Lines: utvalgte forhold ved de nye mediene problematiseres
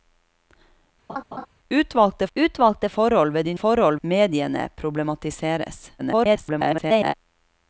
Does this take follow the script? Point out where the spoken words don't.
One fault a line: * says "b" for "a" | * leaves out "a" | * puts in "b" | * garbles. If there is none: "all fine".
* puts in "utvalgte"
* says "forhold" for "nye"
* garbles